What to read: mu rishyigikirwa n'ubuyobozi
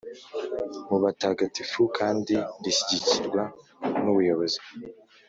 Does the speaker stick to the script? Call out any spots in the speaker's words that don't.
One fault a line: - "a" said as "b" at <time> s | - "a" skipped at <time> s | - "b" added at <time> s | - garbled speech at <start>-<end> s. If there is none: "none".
- "batagatifu kandi" added at 1.0 s